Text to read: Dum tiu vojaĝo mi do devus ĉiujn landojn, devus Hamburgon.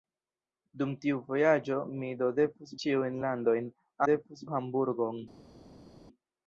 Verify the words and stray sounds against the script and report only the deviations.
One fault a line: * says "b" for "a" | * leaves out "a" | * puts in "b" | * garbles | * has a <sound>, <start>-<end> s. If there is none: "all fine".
all fine